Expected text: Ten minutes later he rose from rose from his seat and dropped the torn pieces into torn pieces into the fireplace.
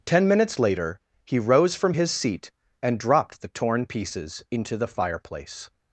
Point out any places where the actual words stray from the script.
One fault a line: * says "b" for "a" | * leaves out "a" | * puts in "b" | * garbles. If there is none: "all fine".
* leaves out "rose from"
* leaves out "torn pieces into"